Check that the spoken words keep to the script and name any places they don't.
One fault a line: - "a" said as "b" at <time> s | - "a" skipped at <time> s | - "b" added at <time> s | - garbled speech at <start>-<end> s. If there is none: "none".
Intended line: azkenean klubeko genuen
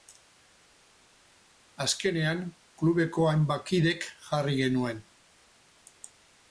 - "hainbat kidek jarri" added at 3.3 s